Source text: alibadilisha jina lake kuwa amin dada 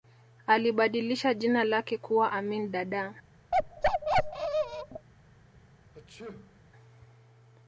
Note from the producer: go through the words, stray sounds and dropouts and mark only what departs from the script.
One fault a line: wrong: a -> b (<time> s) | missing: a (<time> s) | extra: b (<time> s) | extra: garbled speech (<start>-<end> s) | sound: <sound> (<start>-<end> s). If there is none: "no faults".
sound: bark (3.5-5.1 s)
sound: sneeze (5.9-6.6 s)